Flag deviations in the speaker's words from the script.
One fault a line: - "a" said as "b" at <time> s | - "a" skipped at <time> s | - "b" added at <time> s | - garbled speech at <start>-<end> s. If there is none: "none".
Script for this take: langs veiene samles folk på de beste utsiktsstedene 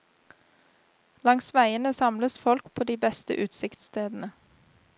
none